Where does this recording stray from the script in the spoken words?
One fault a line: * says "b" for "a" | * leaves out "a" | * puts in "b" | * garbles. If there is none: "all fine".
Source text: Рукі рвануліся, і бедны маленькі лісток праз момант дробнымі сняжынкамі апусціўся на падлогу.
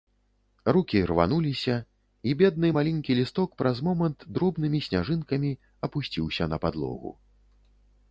all fine